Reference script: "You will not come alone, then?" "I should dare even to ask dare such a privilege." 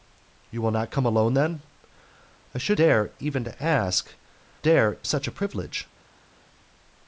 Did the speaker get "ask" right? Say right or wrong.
right